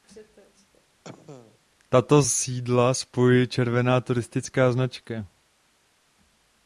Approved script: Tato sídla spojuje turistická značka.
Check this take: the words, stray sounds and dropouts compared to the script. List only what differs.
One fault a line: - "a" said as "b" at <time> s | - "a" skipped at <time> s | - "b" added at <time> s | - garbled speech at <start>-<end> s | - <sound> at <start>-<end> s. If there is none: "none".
- cough at 1.0-1.6 s
- "červená" added at 3.5 s